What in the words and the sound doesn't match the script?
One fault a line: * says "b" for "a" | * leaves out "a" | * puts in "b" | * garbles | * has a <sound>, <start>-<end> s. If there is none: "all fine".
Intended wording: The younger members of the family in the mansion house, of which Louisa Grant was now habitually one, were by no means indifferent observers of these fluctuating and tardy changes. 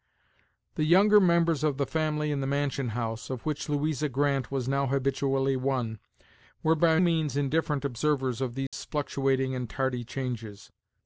* leaves out "no"
* has a dropout, 8.7-8.7 s